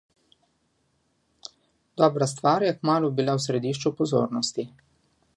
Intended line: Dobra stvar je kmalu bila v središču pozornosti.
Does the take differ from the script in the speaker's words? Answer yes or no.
no